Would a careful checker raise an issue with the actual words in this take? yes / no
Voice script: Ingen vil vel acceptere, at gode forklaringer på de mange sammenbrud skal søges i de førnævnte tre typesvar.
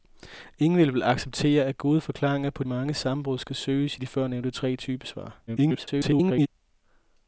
yes